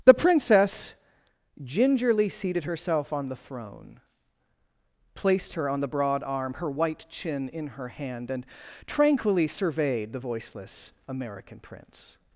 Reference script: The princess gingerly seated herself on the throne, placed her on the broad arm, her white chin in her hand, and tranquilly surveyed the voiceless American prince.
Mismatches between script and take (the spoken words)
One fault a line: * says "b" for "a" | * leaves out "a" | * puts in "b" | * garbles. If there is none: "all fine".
all fine